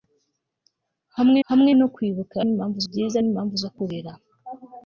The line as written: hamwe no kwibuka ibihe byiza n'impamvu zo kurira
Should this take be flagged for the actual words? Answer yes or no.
yes